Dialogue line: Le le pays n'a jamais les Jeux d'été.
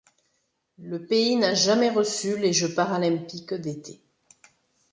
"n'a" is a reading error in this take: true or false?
false